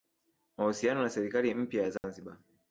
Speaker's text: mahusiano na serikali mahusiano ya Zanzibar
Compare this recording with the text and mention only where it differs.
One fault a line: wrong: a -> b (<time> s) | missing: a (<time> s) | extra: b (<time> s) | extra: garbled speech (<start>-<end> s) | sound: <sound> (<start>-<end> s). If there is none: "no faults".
wrong: mahusiano -> mpya (1.6 s)
sound: dropout (2.0-2.0 s)